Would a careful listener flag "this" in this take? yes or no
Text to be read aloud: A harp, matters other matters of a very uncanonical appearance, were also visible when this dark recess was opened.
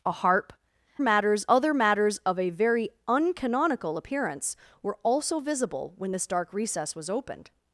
no